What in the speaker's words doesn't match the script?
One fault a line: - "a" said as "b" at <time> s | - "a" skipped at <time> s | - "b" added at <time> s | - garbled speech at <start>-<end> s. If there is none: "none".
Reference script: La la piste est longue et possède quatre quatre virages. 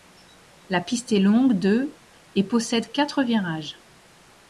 - "la" skipped at 0.8 s
- "de" added at 1.5 s
- "quatre" skipped at 3.2 s